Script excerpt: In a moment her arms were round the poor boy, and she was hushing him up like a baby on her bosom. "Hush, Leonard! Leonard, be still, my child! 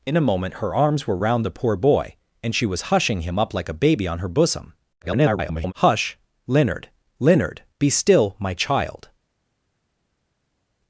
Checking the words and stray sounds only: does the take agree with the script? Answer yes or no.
no